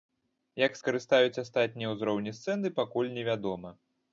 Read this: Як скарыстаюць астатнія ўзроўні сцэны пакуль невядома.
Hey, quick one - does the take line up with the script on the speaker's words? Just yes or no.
yes